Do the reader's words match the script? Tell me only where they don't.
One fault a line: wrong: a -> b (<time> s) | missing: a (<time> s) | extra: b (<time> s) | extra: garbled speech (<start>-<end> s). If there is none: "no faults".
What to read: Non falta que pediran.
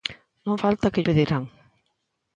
no faults